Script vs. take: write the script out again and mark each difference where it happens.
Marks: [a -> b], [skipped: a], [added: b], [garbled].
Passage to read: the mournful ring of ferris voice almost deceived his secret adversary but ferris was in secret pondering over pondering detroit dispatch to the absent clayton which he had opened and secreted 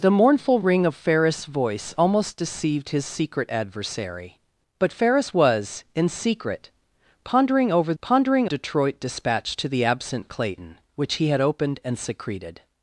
the mournful ring of ferris voice almost deceived his secret adversary but ferris was in secret pondering over pondering detroit dispatch to the absent clayton which he had opened and secreted